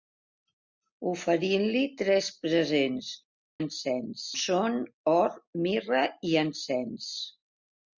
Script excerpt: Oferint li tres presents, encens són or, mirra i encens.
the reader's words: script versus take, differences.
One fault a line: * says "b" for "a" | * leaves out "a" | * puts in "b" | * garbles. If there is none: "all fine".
all fine